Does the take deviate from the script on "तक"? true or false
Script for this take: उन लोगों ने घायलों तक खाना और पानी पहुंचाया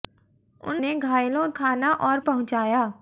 true